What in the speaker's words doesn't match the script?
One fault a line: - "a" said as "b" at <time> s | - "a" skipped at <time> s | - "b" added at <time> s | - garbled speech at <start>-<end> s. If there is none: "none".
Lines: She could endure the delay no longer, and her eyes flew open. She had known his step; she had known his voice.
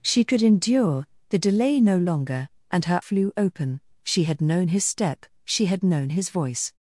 - "eyes" skipped at 3.0 s